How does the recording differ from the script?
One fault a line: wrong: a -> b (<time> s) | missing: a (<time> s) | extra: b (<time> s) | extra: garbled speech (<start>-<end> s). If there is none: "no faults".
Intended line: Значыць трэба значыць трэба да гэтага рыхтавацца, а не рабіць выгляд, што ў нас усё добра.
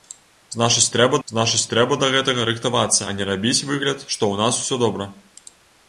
no faults